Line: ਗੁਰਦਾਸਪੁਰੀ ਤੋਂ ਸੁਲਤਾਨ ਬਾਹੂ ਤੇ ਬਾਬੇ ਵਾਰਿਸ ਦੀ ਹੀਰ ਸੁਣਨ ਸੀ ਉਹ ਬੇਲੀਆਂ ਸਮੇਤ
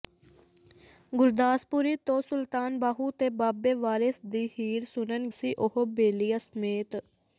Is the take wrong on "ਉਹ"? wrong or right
right